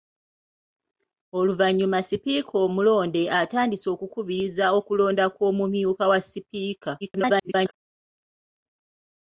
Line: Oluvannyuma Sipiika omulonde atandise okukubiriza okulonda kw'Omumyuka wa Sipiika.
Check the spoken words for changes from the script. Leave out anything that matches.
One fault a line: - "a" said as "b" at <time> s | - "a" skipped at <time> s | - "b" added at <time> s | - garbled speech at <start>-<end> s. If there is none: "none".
- garbled speech at 7.0-7.7 s